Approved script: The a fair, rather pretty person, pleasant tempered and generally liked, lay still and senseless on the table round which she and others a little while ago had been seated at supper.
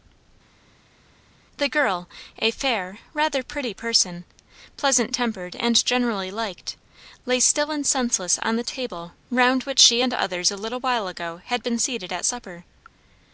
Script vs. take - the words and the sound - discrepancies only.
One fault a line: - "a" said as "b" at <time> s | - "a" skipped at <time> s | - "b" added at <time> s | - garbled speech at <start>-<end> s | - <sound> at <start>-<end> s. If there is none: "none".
- "girl" added at 1.7 s